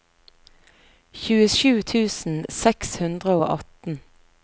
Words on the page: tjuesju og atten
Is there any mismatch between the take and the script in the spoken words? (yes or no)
yes